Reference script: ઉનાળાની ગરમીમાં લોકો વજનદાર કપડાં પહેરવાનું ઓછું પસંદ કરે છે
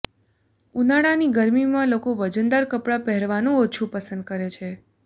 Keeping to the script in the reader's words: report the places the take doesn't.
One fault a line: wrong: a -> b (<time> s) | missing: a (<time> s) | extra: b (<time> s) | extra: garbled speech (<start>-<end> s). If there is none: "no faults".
no faults